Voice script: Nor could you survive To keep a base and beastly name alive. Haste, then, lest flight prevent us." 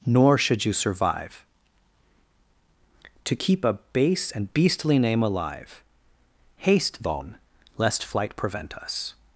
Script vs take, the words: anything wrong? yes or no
yes